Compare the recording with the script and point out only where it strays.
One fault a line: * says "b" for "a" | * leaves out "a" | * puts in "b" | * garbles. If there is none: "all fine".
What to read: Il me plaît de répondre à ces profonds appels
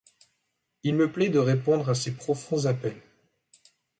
all fine